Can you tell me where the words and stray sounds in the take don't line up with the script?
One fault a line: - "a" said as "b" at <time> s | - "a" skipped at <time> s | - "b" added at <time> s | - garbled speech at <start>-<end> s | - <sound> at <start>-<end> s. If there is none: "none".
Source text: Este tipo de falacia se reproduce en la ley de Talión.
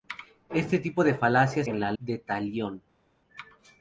- "se reproduce" skipped at 1.6 s
- "ley" skipped at 1.9 s